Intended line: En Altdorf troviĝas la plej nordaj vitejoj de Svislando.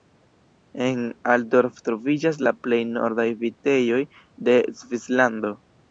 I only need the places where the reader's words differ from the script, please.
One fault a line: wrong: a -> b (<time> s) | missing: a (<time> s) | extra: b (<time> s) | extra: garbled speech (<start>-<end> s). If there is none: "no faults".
no faults